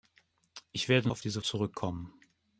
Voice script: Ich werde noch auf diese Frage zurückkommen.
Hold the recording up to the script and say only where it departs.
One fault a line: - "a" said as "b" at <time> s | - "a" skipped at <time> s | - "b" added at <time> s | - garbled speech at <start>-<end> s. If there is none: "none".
- "noch" skipped at 1.1 s
- "Frage" skipped at 1.4 s